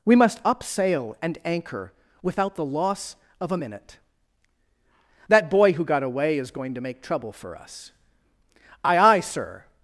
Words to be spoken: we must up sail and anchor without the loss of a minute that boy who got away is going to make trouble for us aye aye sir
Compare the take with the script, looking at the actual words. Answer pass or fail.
pass